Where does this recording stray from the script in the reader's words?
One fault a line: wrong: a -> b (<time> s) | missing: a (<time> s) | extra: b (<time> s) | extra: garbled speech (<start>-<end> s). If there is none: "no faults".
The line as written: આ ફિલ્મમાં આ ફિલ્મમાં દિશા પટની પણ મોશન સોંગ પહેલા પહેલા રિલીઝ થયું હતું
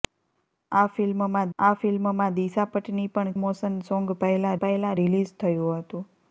no faults